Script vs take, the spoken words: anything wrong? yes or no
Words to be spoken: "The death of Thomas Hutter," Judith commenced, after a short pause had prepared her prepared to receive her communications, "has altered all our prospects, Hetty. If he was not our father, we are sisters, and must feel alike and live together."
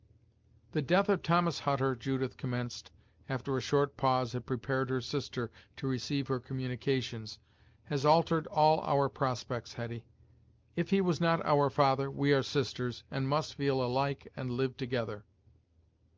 yes